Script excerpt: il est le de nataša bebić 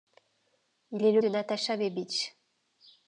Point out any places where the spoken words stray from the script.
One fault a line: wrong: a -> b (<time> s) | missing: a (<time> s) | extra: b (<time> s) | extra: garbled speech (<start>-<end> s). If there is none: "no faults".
no faults